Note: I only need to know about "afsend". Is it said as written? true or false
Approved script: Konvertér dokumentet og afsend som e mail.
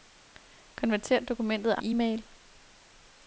false